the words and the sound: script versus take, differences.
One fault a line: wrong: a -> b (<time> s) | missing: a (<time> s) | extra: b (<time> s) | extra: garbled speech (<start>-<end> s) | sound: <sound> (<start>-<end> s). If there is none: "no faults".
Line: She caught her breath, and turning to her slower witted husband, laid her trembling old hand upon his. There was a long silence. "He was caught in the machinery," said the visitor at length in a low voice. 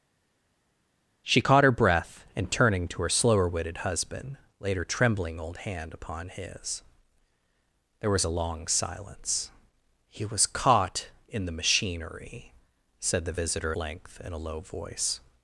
missing: at (13.7 s)